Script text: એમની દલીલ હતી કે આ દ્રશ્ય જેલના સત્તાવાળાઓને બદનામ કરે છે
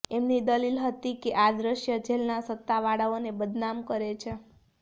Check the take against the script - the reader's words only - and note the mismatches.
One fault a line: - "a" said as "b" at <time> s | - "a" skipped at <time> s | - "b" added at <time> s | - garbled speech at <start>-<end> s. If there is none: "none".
none